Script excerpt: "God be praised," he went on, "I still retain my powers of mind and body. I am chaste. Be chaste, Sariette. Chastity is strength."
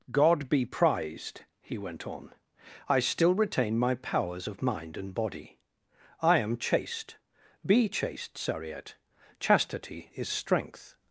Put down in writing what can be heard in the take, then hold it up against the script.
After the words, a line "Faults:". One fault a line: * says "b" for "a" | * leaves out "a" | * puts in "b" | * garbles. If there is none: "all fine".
"God be prized," he went on, "I still retain my powers of mind and body. I am chaste. Be chaste, Sariette. Chastity is strength."
Faults:
* says "prized" for "praised"